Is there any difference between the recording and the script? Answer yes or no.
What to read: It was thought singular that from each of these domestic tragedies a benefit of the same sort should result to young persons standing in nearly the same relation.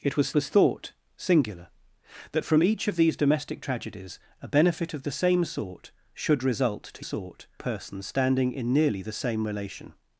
yes